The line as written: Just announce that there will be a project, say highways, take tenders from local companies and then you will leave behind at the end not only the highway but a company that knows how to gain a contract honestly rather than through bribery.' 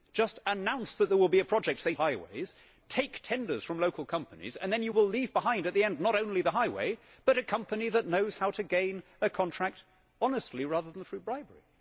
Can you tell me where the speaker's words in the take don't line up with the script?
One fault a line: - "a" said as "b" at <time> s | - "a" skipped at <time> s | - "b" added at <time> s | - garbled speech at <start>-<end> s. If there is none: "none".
none